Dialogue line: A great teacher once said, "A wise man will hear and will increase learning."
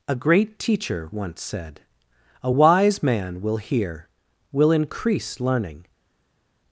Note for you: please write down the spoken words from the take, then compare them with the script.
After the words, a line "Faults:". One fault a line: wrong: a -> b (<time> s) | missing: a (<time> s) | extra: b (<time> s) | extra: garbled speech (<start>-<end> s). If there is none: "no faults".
A great teacher once said, "A wise man will hear will increase learning."
Faults:
missing: and (4.1 s)